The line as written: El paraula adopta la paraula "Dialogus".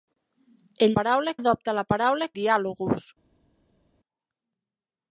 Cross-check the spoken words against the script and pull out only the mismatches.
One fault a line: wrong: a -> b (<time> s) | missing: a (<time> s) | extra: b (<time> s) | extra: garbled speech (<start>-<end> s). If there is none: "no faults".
no faults